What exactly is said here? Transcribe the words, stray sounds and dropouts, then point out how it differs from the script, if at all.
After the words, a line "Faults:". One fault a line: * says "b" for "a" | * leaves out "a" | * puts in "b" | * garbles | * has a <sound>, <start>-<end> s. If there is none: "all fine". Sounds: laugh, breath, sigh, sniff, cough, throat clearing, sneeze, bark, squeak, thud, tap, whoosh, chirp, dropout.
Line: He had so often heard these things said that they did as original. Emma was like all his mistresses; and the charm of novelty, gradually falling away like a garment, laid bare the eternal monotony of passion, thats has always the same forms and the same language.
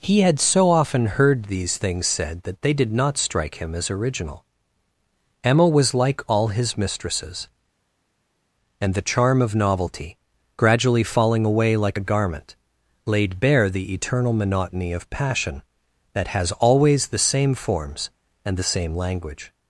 He had so often heard these things said that they did not strike him as original. Emma was like all his mistresses; and the charm of novelty, gradually falling away like a garment, laid bare the eternal monotony of passion, that has always the same forms and the same language.
Faults:
* puts in "not strike him"
* says "that" for "thats"